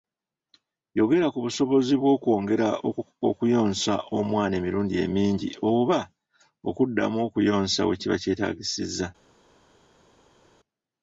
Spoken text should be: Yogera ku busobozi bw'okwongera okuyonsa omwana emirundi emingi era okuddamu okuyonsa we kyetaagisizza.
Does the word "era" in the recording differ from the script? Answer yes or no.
yes